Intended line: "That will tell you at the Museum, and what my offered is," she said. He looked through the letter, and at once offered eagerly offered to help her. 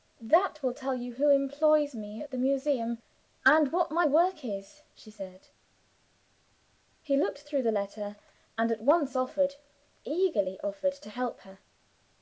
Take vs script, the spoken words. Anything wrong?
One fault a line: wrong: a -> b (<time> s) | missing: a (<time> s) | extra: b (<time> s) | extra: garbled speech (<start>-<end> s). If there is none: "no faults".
extra: who employs me (1.1 s)
wrong: offered -> work (4.0 s)